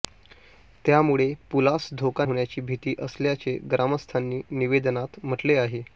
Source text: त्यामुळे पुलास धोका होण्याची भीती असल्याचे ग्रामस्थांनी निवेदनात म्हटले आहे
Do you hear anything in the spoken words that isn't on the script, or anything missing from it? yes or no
no